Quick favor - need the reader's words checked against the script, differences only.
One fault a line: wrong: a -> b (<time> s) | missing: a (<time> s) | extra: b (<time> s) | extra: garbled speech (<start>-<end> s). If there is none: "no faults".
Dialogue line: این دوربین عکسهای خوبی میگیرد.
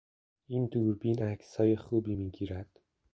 no faults